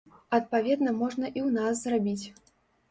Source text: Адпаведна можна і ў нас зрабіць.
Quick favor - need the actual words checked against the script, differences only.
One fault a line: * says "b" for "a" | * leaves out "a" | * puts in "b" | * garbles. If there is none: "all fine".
all fine